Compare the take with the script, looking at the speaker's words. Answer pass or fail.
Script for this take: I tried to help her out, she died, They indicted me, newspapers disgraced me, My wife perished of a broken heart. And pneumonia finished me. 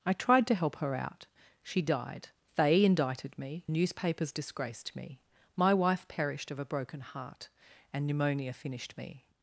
pass